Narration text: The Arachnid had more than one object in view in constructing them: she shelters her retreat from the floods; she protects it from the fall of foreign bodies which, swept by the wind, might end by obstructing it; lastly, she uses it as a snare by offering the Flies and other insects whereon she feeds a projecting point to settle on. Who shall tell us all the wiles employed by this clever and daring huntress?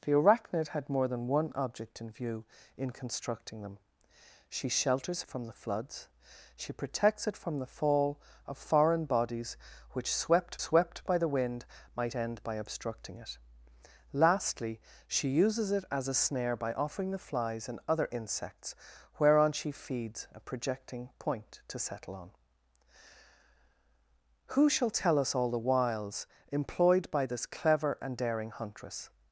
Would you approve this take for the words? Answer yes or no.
no